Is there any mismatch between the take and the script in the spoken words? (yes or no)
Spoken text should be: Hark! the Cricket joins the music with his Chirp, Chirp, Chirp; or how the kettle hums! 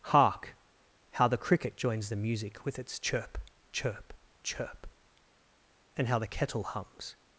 yes